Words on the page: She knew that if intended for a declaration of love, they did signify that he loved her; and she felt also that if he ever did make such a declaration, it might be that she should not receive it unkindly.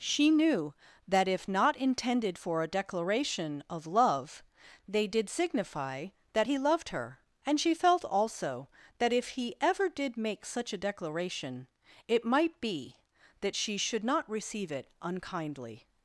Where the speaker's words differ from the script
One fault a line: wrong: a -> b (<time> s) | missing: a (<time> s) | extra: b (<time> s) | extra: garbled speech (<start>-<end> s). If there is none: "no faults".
extra: not (1.5 s)